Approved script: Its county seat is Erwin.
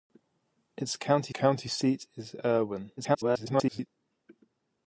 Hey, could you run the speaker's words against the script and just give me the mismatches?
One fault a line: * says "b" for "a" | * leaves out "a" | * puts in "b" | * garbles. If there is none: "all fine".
* puts in "county"
* garbles